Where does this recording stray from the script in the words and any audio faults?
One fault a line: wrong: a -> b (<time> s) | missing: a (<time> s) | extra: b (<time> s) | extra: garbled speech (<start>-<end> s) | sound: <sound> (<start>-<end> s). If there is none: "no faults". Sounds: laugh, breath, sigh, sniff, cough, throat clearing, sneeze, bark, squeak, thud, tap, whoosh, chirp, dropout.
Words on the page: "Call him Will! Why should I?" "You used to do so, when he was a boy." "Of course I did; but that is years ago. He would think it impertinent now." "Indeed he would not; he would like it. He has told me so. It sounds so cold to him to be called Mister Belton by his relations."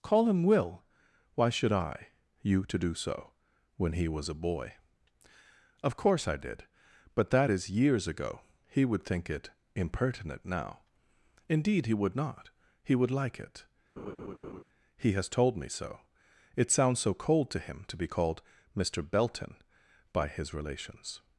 missing: used (2.6 s)
sound: laugh (14.0-14.6 s)